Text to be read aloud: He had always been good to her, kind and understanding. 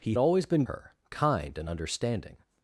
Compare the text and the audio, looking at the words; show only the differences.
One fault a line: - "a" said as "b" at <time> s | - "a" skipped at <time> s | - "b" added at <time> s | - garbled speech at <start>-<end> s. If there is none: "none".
- "had" skipped at 0.1 s
- "good to" skipped at 0.6 s